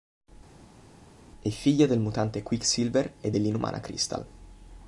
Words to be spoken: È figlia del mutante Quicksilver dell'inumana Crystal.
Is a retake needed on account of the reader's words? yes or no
yes